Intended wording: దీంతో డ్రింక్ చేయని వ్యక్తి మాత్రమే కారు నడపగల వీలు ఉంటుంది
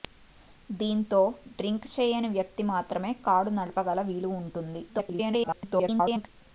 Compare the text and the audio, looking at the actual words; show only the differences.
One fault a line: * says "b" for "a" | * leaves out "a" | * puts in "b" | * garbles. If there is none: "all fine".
* garbles